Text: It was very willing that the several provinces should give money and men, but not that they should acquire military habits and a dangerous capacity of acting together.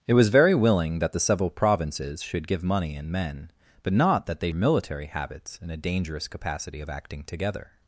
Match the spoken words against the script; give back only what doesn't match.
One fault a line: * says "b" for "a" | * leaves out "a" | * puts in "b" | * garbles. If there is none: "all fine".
* leaves out "should acquire"